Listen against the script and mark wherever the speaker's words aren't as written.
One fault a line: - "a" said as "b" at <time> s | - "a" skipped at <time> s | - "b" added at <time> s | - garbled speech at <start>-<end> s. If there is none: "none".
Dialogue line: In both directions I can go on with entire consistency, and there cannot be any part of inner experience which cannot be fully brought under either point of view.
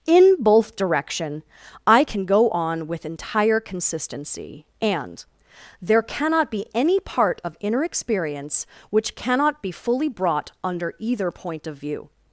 - "directions" said as "direction" at 0.8 s